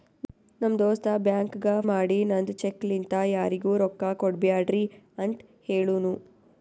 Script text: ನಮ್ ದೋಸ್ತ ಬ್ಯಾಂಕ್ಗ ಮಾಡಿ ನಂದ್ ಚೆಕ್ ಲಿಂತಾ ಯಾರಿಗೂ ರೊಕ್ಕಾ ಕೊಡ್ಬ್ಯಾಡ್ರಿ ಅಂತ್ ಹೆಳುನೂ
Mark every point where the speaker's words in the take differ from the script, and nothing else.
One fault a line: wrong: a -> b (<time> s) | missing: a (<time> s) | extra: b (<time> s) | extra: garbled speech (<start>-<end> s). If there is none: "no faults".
no faults